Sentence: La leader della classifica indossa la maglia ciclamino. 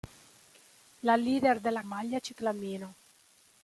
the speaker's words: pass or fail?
fail